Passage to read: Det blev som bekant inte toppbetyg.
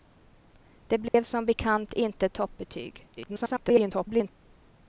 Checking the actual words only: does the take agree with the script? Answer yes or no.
no